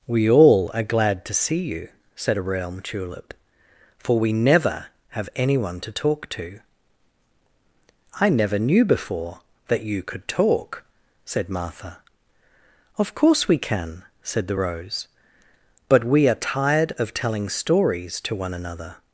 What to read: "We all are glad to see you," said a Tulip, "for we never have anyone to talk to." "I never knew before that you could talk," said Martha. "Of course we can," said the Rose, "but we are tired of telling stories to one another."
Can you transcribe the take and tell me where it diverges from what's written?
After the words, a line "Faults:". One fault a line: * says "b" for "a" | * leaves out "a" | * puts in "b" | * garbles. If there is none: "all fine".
"We all are glad to see you," said a realm Tulip, "for we never have anyone to talk to." "I never knew before that you could talk," said Martha. "Of course we can," said the Rose, "but we are tired of telling stories to one another."
Faults:
* puts in "realm"